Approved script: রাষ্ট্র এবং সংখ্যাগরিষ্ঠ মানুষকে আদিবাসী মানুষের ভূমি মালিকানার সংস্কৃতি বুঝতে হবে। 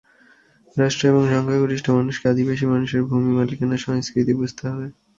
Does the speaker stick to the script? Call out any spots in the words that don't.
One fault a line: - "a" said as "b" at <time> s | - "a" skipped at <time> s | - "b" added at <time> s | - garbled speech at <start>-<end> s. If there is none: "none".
none